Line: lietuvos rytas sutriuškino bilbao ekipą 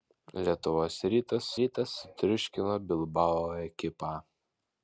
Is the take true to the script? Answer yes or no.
no